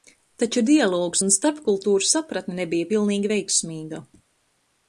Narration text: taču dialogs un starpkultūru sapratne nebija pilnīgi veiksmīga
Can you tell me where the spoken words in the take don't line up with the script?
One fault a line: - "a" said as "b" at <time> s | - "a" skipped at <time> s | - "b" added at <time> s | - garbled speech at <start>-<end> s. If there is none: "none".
none